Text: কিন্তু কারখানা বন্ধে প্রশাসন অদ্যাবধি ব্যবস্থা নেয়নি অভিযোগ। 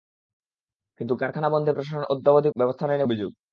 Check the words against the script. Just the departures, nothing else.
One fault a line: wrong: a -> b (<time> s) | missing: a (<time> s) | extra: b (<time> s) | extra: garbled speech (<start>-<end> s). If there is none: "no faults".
no faults